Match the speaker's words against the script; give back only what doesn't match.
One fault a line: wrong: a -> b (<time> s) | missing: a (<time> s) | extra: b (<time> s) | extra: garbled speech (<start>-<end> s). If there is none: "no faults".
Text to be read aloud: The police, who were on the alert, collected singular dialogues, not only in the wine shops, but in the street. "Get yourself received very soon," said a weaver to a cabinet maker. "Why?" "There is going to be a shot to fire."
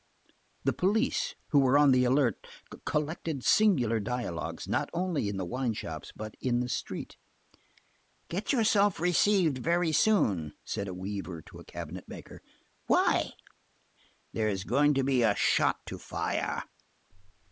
no faults